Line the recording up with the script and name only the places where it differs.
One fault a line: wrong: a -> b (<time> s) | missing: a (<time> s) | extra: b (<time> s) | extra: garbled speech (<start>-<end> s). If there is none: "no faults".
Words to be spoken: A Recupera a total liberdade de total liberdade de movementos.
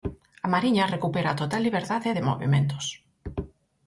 extra: Mariña (0.5 s)
missing: total liberdade de (2.3 s)